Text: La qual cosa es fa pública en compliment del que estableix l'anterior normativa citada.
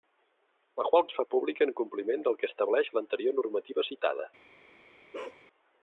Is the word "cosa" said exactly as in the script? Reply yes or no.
no